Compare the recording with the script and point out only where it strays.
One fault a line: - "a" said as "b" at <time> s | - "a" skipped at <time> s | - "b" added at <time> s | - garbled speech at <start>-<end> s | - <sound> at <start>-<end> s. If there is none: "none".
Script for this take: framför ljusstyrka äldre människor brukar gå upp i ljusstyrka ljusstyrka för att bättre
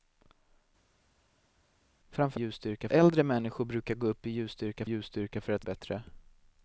none